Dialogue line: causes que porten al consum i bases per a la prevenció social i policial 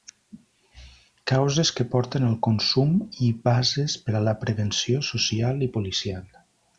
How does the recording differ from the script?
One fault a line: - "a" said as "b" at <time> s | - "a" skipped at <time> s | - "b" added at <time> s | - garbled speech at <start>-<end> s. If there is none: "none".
none